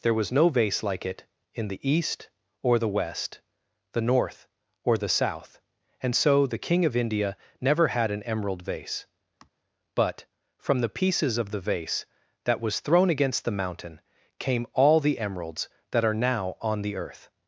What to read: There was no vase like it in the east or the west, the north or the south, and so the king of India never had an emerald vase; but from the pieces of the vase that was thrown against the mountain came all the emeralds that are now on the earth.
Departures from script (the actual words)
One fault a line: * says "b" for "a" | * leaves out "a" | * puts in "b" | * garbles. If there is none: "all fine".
all fine